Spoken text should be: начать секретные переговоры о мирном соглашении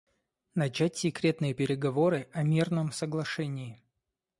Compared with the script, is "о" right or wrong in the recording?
right